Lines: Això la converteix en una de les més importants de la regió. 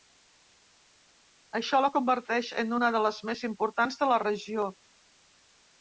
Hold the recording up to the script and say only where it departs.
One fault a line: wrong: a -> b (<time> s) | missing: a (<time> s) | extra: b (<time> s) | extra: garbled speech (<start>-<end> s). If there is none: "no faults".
no faults